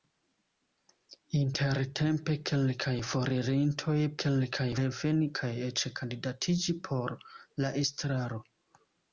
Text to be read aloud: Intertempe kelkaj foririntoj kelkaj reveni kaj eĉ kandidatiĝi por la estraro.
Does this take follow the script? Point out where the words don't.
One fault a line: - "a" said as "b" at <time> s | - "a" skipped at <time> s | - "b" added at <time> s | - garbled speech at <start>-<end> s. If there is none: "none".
none